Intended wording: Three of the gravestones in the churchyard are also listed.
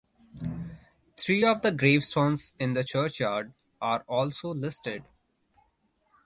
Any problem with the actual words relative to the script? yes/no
no